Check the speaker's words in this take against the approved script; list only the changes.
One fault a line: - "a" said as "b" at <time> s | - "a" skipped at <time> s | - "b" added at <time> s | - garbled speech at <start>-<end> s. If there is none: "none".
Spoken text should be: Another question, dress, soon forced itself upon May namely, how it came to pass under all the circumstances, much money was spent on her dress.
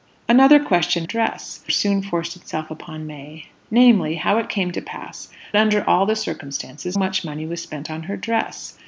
none